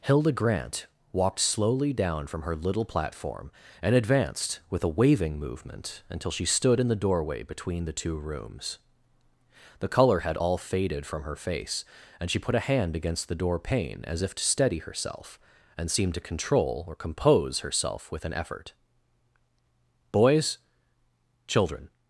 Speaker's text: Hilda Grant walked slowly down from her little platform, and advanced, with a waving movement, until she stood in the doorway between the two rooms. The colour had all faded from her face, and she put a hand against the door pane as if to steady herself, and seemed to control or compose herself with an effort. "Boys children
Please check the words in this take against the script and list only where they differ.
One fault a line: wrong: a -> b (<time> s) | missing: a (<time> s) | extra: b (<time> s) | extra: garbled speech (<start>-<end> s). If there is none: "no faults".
no faults